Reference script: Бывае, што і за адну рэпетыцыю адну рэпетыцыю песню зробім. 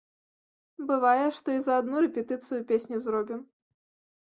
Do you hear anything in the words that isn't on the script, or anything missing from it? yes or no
yes